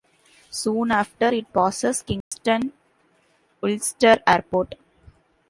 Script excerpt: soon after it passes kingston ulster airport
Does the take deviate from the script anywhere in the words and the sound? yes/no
yes